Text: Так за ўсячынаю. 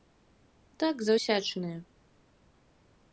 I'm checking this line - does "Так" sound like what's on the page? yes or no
yes